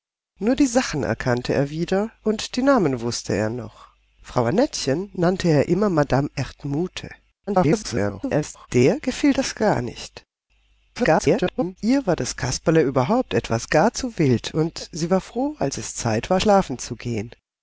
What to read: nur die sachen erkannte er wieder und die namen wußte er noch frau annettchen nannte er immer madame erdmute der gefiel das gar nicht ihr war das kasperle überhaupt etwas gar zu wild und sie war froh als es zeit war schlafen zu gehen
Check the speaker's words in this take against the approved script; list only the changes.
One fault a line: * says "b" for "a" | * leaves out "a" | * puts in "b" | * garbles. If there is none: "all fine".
* garbles
* garbles